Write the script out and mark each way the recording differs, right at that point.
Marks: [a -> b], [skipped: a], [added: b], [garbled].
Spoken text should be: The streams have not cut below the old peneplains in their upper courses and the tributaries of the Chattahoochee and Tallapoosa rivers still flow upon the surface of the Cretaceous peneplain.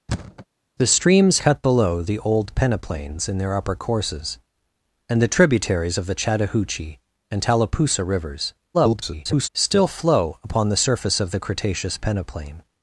The streams [skipped: have not] cut below the old peneplains in their upper courses and the tributaries of the Chattahoochee and Tallapoosa rivers [garbled] still flow upon the surface of the Cretaceous peneplain.